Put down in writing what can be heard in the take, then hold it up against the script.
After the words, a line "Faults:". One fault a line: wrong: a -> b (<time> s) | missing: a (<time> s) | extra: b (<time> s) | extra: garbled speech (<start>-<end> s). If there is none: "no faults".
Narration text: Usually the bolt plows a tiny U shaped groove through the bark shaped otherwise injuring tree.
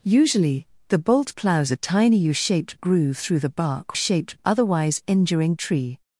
Usually the bolt plows a tiny U shaped groove through the bark shaped otherwise injuring tree.
Faults:
no faults